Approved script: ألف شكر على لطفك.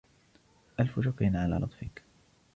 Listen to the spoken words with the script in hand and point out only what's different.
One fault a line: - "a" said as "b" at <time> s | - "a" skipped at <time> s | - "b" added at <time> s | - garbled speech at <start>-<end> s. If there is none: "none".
none